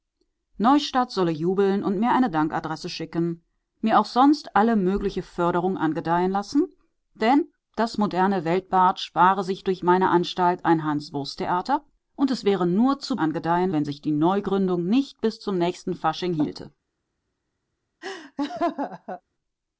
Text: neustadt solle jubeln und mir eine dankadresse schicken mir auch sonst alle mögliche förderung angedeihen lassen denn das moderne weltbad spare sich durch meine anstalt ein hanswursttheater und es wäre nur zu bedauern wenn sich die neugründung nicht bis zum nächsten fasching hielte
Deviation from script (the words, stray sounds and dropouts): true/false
true